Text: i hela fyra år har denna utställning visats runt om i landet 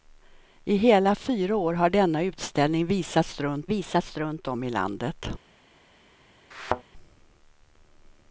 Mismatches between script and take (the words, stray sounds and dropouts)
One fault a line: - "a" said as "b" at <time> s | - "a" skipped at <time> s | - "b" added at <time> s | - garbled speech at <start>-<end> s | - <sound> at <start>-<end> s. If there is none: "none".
- "visats runt" added at 3.7 s
- thud at 6.5-6.8 s